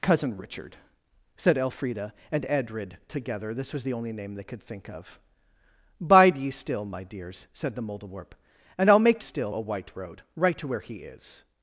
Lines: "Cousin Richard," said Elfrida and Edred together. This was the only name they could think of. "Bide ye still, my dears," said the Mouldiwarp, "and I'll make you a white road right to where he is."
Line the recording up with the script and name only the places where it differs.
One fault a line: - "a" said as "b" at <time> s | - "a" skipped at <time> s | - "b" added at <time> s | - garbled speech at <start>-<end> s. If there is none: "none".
- "you" said as "still" at 9.2 s